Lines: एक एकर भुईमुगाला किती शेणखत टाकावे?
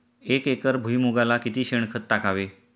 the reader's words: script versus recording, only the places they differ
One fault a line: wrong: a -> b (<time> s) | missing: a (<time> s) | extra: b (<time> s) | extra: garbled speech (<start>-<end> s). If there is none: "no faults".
no faults